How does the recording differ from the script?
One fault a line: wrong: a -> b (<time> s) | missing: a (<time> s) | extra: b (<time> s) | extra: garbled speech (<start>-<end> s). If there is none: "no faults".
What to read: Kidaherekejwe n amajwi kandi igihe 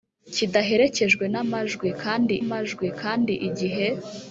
extra: amajwi kandi (2.4 s)